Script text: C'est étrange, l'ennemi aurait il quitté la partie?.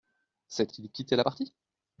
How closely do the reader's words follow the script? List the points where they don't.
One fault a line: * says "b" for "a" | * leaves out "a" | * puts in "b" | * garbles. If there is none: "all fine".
* leaves out "étrange l'ennemi aurait"